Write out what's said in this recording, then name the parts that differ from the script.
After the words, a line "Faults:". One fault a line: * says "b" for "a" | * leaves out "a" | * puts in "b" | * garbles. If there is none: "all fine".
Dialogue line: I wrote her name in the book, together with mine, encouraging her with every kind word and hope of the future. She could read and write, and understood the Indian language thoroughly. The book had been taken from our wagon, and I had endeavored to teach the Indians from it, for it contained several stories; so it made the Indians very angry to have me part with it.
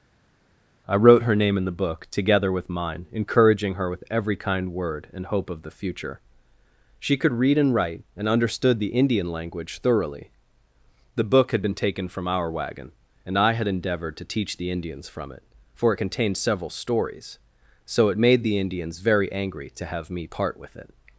I wrote her name in the book, together with mine, encouraging her with every kind word and hope of the future. She could read and write, and understood the Indian language thoroughly. The book had been taken from our wagon, and I had endeavored to teach the Indians from it, for it contained several stories; so it made the Indians very angry to have me part with it.
Faults:
all fine